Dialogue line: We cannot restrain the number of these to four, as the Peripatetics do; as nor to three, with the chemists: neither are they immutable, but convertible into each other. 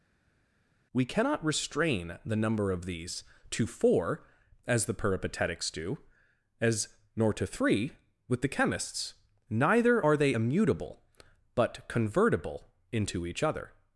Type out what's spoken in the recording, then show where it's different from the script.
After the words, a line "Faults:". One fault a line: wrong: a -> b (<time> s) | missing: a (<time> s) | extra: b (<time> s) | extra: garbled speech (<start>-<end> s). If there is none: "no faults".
We cannot restrain the number of these to four, as the Peripatetics do; as nor to three, with the chemists: neither are they immutable, but convertible into each other.
Faults:
no faults